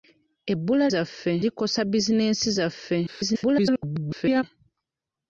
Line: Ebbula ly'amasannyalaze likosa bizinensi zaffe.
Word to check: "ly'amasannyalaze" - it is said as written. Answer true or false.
false